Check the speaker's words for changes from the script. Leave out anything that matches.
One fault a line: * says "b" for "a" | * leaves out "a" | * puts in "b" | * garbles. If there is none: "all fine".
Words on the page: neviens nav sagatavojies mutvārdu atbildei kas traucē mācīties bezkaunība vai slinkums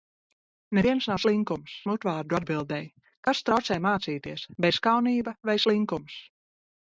* says "slinkums" for "sagatavojies"